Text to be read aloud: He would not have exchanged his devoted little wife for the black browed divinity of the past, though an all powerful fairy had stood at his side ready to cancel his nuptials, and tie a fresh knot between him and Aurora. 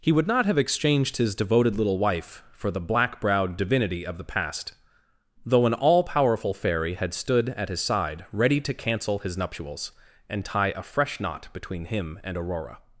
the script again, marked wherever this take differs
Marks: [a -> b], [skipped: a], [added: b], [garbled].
He would not have exchanged his devoted little wife for the black browed divinity of the past, though an all powerful fairy had stood at his side ready to cancel his nuptials, and tie a fresh knot between him and Aurora.